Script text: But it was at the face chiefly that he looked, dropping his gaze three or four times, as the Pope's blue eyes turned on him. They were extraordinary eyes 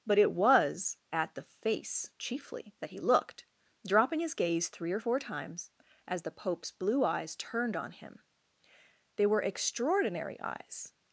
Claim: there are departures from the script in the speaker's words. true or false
false